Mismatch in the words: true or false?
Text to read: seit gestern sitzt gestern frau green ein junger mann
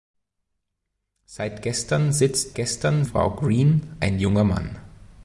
false